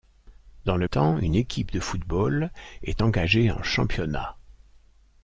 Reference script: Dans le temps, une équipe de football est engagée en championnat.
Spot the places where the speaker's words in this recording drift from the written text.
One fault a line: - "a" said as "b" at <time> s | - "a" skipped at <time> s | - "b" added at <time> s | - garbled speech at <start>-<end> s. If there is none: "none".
none